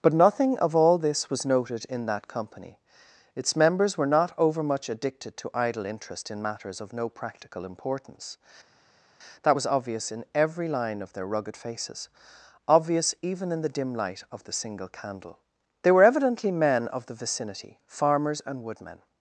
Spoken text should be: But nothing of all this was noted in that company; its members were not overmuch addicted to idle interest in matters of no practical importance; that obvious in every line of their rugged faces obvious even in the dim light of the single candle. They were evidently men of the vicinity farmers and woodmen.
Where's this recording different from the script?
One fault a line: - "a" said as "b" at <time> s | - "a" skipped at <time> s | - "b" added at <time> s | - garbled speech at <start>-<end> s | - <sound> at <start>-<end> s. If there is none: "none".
- "was" added at 9.5 s